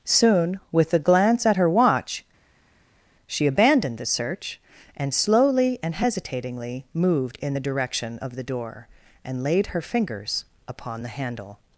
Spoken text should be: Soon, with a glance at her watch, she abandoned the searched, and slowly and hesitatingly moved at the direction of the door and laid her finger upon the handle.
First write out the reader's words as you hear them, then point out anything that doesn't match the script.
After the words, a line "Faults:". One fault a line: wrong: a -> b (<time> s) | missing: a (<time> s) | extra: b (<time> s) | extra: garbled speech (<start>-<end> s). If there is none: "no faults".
Soon, with a glance at her watch, she abandoned the search, and slowly and hesitatingly moved in the direction of the door and laid her fingers upon the handle.
Faults:
wrong: searched -> search (4.0 s)
wrong: at -> in (7.4 s)
wrong: finger -> fingers (9.8 s)